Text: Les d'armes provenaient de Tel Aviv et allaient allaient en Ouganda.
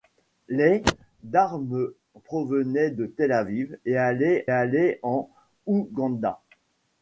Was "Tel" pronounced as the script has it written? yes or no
yes